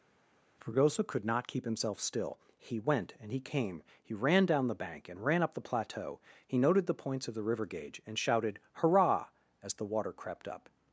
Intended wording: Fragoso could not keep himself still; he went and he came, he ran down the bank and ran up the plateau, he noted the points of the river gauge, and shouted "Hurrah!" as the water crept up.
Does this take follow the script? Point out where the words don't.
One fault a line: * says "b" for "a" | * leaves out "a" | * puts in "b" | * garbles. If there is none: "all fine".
all fine